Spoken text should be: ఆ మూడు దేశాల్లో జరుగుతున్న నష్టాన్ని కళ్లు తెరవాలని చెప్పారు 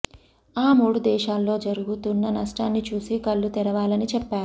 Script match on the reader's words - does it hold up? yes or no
no